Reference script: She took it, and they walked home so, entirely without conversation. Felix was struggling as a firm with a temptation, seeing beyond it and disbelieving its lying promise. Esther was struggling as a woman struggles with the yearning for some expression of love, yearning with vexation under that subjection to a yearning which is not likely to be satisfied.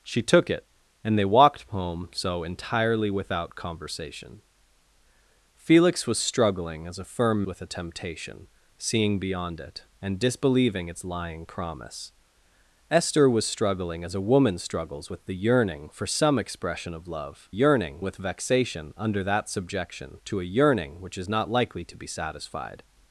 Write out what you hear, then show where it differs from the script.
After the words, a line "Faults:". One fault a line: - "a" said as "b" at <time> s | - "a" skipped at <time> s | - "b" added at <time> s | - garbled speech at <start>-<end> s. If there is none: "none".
She took it, and they walked home so, entirely without conversation. Felix was struggling as a firm with a temptation, seeing beyond it and disbelieving its lying promise. Esther was struggling as a woman struggles with the yearning for some expression of love, yearning with vexation under that subjection to a yearning which is not likely to be satisfied.
Faults:
none